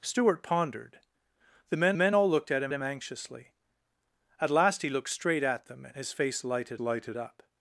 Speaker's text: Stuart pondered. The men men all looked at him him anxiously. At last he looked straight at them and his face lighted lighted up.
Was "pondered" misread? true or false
false